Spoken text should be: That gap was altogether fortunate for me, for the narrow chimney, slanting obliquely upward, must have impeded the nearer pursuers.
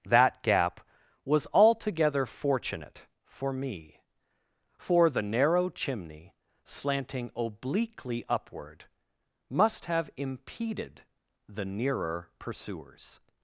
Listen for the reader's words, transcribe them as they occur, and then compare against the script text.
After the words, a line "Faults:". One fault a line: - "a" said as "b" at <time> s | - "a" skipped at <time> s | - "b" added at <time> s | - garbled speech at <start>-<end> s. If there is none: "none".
That gap was altogether fortunate for me, for the narrow chimney, slanting obliquely upward, must have impeded the nearer pursuers.
Faults:
none